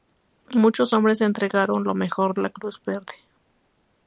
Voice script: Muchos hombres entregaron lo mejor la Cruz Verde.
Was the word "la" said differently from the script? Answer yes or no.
no